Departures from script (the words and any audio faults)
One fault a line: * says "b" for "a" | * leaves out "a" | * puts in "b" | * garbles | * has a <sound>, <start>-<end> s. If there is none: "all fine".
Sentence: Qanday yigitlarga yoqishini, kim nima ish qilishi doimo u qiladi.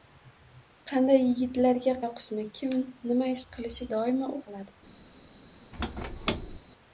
* has a squeak, 5.7-6.6 s